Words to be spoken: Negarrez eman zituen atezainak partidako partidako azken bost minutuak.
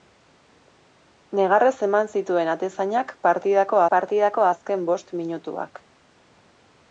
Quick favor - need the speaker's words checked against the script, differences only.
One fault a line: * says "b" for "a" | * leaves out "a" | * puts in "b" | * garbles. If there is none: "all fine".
all fine